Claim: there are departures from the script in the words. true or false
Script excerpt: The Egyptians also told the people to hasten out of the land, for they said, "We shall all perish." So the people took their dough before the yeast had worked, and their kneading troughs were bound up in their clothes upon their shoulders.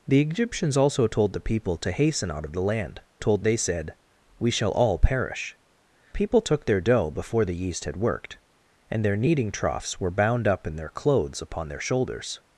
true